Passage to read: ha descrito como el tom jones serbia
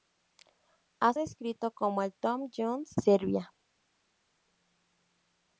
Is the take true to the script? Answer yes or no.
yes